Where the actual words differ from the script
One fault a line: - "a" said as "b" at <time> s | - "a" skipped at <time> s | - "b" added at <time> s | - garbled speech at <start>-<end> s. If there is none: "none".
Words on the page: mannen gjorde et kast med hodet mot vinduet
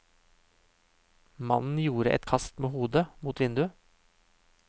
none